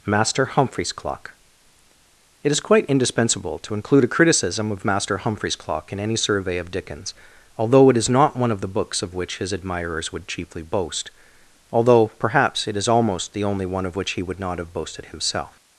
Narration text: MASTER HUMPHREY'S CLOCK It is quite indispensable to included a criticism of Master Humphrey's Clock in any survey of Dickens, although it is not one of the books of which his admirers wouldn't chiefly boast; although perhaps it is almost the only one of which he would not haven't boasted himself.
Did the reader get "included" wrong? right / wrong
wrong